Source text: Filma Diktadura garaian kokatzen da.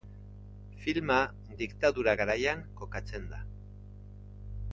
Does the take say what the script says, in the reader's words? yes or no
yes